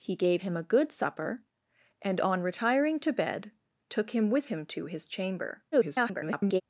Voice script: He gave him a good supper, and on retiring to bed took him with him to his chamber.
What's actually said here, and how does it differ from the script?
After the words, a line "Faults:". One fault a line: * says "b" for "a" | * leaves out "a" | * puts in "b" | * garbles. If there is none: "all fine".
He gave him a good supper, and on retiring to bed took him with him to his chamber. [garbled]
Faults:
* garbles